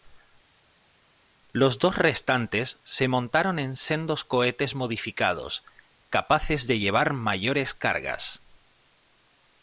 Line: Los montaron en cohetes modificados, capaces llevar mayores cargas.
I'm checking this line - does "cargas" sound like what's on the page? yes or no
yes